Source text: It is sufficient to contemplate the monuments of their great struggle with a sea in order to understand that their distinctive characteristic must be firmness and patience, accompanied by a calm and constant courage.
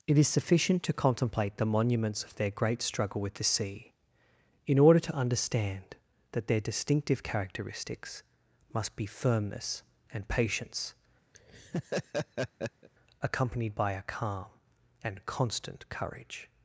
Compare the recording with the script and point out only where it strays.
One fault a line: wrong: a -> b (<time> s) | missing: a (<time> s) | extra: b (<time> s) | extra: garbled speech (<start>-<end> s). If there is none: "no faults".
wrong: a -> the (3.3 s)
wrong: characteristic -> characteristics (7.2 s)